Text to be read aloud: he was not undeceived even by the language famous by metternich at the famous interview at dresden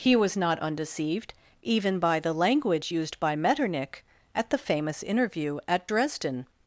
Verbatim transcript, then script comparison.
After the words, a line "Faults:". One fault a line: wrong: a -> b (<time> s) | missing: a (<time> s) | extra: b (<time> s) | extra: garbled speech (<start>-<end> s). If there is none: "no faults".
he was not undeceived even by the language used by metternich at the famous interview at dresden
Faults:
wrong: famous -> used (2.9 s)